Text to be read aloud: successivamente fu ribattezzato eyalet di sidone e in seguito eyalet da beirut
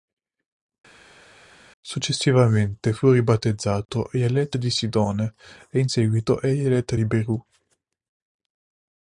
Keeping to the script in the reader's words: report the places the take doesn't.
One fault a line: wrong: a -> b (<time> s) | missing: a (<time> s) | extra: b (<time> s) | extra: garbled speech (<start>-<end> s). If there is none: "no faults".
wrong: da -> di (6.9 s)